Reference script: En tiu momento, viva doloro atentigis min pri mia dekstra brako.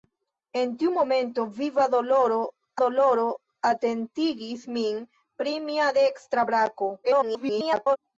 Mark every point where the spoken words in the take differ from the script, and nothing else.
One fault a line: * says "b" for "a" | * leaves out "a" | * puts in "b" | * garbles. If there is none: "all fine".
* puts in "doloro"
* garbles